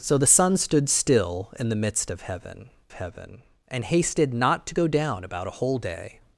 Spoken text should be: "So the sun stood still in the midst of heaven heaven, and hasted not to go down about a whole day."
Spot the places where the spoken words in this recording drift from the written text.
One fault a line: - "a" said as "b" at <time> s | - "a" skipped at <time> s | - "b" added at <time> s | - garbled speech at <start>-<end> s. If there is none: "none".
none